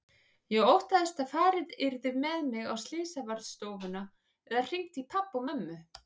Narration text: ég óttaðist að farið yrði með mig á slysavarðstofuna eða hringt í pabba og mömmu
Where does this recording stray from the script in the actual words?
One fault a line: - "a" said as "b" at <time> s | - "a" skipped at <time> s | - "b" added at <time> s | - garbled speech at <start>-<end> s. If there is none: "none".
none